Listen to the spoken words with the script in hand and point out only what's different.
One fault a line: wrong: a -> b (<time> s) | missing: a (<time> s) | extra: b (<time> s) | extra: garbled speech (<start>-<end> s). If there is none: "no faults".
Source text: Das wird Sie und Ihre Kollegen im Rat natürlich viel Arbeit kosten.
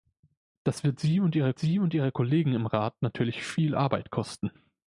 extra: Sie und Ihre (1.6 s)